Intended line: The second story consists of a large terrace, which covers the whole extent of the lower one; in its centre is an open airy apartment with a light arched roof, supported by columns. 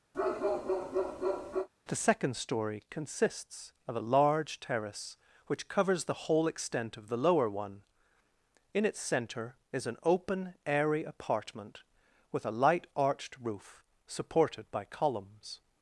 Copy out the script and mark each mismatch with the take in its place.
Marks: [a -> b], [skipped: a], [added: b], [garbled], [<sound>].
[bark] The second story consists of a large terrace, which covers the whole extent of the lower one; in its centre is an open airy apartment with a light arched roof, supported by columns.